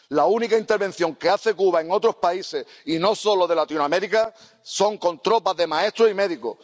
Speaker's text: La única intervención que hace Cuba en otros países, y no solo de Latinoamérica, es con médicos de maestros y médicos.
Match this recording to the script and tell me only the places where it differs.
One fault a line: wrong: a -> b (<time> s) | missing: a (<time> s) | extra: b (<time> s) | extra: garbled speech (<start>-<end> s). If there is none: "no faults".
wrong: médicos -> tropas (5.2 s)